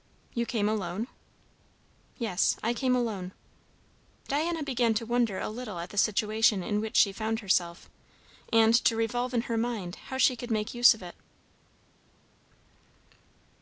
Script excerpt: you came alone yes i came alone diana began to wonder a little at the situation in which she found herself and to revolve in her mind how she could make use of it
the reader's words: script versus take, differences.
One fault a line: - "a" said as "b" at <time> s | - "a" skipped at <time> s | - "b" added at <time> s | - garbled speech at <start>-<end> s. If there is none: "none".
none